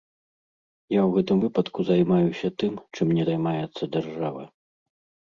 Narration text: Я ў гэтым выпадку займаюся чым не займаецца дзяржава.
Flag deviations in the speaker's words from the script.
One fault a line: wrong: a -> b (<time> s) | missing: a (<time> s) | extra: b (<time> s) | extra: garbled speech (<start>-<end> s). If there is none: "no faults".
extra: тым (2.6 s)